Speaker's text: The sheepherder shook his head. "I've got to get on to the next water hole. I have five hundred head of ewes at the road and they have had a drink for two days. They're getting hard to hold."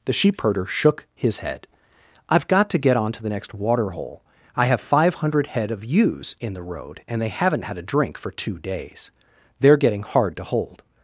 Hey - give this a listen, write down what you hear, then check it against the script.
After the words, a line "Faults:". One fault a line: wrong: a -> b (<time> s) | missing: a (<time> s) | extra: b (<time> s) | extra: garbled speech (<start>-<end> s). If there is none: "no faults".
The sheepherder shook his head. "I've got to get on to the next water hole. I have five hundred head of ewes in the road and they haven't had a drink for two days. They're getting hard to hold."
Faults:
wrong: at -> in (6.4 s)
wrong: have -> haven't (7.3 s)